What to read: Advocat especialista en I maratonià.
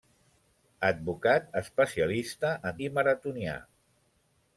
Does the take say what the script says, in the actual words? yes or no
yes